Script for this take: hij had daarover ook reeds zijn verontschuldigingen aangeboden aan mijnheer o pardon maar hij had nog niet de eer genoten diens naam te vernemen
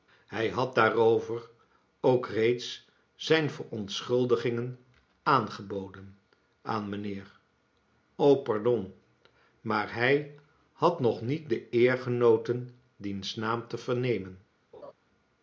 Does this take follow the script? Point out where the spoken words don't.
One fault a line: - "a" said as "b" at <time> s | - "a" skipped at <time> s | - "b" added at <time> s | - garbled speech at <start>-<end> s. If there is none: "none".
none